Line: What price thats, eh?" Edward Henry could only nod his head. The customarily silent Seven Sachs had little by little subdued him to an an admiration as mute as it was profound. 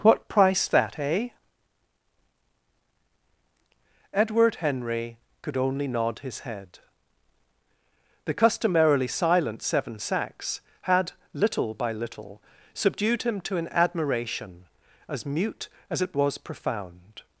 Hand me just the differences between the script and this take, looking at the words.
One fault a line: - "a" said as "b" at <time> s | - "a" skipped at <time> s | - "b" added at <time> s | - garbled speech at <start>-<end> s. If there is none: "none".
- "thats" said as "that" at 0.7 s
- "an" skipped at 13.7 s